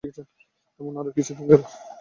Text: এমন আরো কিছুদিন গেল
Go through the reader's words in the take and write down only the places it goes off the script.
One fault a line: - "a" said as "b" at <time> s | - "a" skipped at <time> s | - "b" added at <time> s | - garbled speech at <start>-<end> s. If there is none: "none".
none